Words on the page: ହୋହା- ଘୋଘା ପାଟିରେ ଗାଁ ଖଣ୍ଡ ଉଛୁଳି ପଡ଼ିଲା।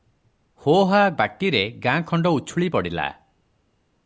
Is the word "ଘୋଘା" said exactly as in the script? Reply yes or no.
no